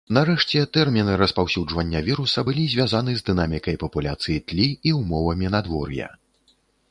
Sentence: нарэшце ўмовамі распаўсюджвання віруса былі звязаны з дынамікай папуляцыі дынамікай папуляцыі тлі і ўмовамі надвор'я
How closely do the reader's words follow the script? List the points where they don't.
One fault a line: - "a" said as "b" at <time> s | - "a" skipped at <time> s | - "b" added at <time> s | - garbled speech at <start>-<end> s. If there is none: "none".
- "ўмовамі" said as "тэрміны" at 0.8 s
- "дынамікай папуляцыі" skipped at 4.4 s